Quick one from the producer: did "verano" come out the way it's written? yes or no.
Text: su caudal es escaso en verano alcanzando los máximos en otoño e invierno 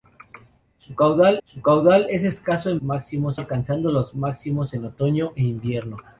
no